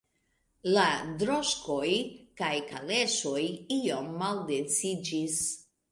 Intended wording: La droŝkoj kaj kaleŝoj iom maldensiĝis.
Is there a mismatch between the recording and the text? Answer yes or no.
no